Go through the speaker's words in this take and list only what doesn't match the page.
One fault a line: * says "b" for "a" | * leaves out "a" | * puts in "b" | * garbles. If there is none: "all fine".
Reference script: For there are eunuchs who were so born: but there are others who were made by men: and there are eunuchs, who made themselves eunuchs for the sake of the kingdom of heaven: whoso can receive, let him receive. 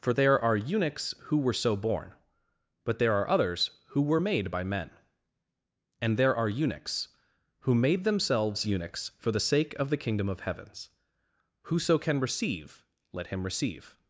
* says "heavens" for "heaven"